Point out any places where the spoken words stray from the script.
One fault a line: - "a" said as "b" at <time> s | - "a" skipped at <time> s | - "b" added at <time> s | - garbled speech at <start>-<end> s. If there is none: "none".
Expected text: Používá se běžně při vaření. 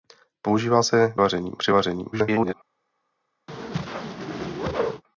- "běžně" said as "vaření" at 1.2 s
- garbled speech at 2.1-2.5 s